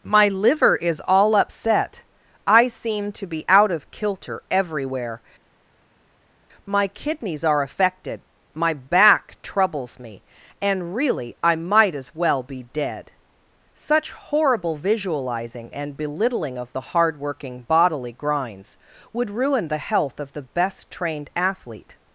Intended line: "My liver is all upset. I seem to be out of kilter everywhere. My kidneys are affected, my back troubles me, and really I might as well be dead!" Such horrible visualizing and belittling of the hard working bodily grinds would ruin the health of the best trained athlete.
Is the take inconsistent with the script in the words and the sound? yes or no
no